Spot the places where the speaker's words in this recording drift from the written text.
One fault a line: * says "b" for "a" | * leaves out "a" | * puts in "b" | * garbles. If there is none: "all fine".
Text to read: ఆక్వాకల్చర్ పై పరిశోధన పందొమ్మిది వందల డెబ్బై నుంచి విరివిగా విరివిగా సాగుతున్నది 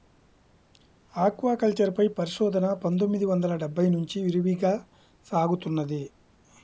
* leaves out "విరివిగా"